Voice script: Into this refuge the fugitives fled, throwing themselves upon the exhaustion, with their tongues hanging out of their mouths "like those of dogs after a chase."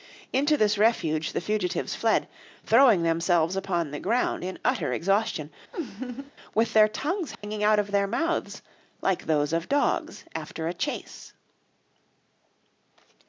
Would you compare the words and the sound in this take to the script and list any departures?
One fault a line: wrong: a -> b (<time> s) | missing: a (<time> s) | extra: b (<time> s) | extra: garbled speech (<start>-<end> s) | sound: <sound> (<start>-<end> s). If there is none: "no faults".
extra: ground in utter (4.0 s)
sound: laugh (5.7-6.3 s)
sound: dropout (7.3-7.4 s)